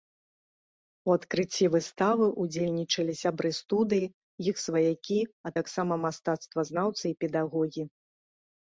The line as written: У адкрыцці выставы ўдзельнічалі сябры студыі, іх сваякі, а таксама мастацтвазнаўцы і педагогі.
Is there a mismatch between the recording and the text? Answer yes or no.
no